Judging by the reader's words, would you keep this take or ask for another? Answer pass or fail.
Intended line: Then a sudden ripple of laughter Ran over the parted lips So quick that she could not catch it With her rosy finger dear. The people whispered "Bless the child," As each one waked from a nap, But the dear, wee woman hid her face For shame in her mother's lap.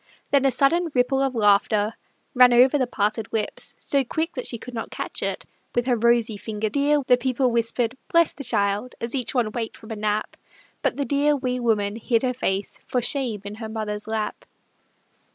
pass